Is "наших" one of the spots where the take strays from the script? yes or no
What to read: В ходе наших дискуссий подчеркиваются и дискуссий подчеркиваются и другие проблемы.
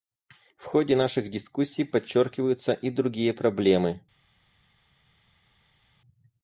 no